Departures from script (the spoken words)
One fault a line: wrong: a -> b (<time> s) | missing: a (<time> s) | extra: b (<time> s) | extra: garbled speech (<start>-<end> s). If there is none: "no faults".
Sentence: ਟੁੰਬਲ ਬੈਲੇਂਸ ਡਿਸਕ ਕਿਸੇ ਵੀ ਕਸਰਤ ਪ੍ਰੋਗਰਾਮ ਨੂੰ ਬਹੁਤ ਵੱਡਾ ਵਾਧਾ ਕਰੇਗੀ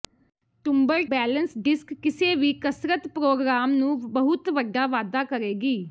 no faults